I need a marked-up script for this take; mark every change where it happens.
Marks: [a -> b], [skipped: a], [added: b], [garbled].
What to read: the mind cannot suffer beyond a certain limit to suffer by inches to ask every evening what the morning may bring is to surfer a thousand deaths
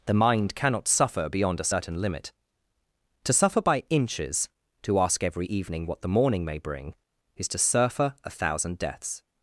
the mind cannot suffer beyond a certain limit to suffer by inches to ask every evening what the morning may bring is to surfer a thousand deaths